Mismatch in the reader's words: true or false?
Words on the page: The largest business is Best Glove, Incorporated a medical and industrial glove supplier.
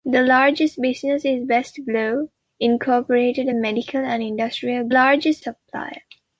true